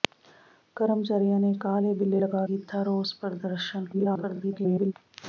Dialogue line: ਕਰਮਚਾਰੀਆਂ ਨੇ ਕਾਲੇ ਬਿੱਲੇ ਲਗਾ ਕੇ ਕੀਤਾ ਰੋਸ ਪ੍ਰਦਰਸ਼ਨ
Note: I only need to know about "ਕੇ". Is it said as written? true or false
false